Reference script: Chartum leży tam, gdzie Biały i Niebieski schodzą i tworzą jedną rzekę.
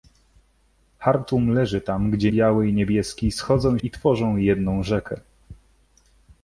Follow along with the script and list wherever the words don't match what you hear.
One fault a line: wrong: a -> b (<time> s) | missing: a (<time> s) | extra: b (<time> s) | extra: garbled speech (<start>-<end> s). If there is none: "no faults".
no faults